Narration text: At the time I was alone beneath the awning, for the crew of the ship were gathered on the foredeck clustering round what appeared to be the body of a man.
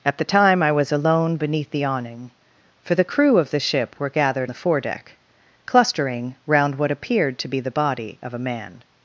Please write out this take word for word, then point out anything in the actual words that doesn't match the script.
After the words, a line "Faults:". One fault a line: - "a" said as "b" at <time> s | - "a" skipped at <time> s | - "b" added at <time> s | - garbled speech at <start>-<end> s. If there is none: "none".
At the time I was alone beneath the awning, for the crew of the ship were gathered the foredeck clustering round what appeared to be the body of a man.
Faults:
- "on" skipped at 4.5 s